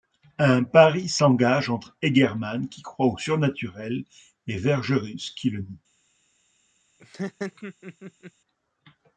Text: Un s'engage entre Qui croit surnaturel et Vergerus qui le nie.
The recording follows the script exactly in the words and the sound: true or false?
false